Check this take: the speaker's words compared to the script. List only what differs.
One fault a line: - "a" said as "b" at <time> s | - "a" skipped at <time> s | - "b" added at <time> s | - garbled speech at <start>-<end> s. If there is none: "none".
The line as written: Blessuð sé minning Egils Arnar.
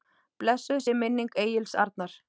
none